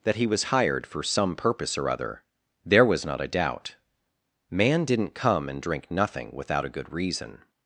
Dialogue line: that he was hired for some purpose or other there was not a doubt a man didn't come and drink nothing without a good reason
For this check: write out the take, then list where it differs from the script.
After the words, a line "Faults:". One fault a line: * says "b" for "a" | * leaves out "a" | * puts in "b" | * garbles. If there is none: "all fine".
that he was hired for some purpose or other there was not a doubt man didn't come and drink nothing without a good reason
Faults:
* leaves out "a"